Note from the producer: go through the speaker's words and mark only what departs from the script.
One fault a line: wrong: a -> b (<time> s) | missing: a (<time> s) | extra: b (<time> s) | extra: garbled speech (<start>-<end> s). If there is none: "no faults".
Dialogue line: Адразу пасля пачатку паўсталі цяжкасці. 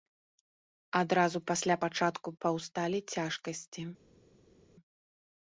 no faults